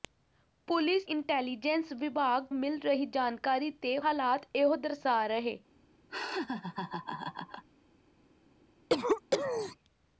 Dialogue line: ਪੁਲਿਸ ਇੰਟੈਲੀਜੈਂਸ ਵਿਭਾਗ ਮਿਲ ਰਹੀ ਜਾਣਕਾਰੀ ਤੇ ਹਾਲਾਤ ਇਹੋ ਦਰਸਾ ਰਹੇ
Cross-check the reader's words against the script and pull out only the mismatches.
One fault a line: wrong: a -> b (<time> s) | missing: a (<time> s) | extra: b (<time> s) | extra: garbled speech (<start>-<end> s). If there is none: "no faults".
no faults